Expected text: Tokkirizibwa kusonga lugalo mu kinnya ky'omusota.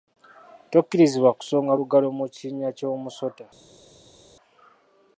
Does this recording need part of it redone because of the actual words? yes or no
no